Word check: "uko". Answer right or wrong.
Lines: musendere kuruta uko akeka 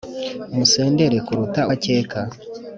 wrong